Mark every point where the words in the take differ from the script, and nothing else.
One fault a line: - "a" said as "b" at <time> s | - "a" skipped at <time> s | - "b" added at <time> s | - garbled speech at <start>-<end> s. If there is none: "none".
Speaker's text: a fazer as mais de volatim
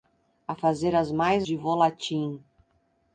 none